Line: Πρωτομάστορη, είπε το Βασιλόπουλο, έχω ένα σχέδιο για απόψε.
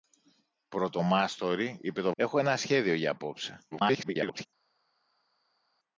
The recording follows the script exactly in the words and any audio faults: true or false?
false